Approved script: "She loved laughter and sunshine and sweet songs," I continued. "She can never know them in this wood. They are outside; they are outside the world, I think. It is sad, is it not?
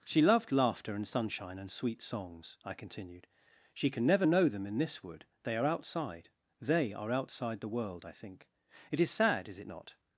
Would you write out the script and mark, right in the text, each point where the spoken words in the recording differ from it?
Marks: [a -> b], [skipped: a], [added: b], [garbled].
"She loved laughter and sunshine and sweet songs," I continued. "She can never know them in this wood. They are outside; they are outside the world, I think. It is sad, is it not?